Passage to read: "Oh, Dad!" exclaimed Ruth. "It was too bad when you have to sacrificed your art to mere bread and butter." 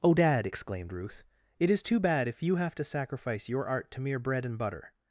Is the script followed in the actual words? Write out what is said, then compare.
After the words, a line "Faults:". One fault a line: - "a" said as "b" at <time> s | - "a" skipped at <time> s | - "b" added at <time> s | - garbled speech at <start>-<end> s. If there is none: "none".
"Oh, Dad!" exclaimed Ruth. "It is too bad if you have to sacrifice your art to mere bread and butter."
Faults:
- "was" said as "is" at 1.7 s
- "when" said as "if" at 2.3 s
- "sacrificed" said as "sacrifice" at 2.8 s